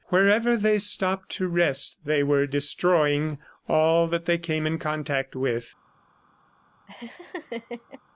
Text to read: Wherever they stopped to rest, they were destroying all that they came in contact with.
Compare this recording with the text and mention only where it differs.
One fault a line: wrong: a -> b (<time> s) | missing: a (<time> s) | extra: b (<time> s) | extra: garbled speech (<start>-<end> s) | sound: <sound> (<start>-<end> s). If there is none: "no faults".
sound: laugh (6.9-8.0 s)